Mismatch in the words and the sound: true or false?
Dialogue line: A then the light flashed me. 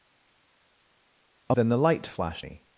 false